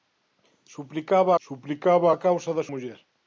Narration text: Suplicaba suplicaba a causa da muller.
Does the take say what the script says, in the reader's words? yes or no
yes